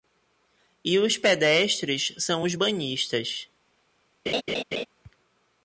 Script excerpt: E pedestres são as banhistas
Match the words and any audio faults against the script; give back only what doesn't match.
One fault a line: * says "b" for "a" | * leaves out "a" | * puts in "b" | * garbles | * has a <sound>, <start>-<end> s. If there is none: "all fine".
* puts in "os"
* says "os" for "as"
* has a laugh, 4.3-4.9 s